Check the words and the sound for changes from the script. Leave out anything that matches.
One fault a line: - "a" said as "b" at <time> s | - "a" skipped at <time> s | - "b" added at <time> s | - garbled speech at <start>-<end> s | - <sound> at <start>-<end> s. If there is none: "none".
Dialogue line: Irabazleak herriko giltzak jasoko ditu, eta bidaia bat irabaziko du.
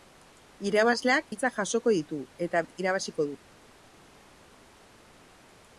- "herriko" skipped at 1.3 s
- "bidaia" skipped at 2.6 s